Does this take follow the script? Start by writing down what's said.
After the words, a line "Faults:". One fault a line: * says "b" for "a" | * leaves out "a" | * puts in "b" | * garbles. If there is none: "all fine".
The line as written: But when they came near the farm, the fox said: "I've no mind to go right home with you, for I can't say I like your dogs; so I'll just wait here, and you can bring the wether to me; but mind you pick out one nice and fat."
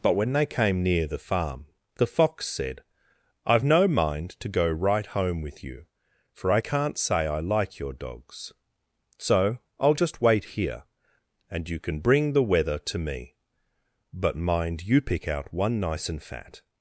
But when they came near the farm, the fox said: "I've no mind to go right home with you, for I can't say I like your dogs; so I'll just wait here, and you can bring the wether to me; but mind you pick out one nice and fat."
Faults:
all fine